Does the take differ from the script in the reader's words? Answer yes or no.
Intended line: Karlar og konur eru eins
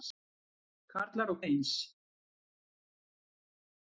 yes